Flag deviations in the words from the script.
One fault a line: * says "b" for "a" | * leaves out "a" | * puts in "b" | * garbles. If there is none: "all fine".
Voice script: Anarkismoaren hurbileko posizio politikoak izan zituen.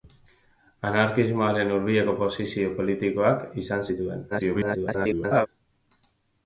* garbles